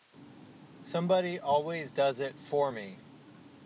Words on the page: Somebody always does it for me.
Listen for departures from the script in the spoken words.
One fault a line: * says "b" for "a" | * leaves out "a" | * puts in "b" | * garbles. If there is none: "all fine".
all fine